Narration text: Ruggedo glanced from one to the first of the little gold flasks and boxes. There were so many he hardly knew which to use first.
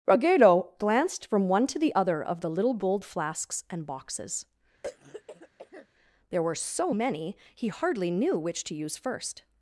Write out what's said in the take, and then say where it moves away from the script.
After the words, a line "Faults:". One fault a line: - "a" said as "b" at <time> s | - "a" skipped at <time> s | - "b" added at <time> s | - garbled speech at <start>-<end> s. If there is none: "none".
Ruggedo glanced from one to the other of the little gold flasks and boxes. There were so many he hardly knew which to use first.
Faults:
- "first" said as "other" at 1.9 s